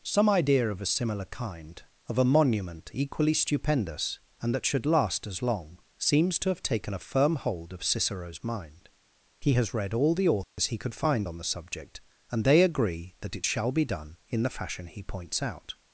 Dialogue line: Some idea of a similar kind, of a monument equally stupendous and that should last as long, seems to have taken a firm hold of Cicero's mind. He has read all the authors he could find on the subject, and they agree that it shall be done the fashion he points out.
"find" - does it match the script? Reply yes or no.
yes